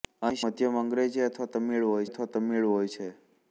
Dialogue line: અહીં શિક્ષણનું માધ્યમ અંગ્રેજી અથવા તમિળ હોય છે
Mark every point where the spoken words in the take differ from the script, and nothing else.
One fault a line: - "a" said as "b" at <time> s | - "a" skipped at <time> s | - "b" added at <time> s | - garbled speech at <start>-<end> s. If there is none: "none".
- "શિક્ષણનું" skipped at 0.4 s
- "અથવા તમિળ હોય" added at 2.0 s